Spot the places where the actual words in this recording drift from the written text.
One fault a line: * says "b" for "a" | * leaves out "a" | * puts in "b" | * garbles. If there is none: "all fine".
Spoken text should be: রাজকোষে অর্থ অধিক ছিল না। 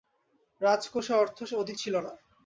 all fine